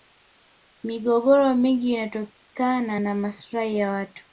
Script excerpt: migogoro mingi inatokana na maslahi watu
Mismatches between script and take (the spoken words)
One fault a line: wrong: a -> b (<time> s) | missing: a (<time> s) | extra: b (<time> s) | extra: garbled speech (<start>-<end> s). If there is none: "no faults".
extra: ya (3.8 s)